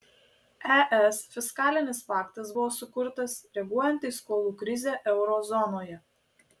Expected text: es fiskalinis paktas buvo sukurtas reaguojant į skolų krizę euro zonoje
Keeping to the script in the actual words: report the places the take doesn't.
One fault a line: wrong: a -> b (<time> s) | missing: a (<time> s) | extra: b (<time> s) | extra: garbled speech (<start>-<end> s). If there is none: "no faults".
no faults